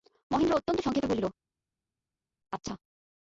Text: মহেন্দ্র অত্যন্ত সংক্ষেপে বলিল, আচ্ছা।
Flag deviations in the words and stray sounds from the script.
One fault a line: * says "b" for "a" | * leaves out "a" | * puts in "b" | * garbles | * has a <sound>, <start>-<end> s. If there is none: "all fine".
all fine